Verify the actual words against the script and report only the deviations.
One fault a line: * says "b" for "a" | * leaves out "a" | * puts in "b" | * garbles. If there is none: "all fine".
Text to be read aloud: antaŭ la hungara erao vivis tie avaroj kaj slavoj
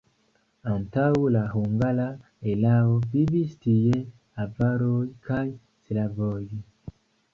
all fine